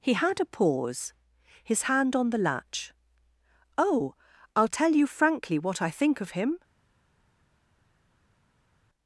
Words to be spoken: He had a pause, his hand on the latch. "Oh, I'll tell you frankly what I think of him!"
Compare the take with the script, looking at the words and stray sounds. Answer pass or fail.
pass